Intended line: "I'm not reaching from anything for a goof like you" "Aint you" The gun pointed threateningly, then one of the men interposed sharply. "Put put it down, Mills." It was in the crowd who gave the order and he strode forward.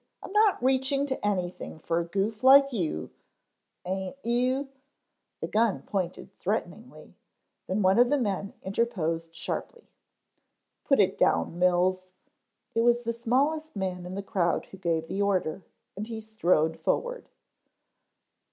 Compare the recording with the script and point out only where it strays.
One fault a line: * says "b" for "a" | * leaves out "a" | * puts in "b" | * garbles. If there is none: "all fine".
* says "to" for "from"
* leaves out "put"
* puts in "the smallest man"